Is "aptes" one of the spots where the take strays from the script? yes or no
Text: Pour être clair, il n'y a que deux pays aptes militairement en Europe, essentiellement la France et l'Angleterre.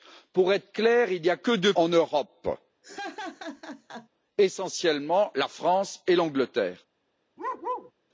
yes